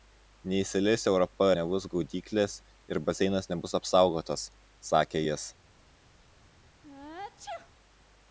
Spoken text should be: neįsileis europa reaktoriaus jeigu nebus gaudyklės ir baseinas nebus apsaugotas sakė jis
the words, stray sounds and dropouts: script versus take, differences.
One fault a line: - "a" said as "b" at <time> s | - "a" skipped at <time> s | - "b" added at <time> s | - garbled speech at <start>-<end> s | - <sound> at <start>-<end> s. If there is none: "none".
- "reaktoriaus jeigu" skipped at 1.5 s
- sneeze at 6.8-7.7 s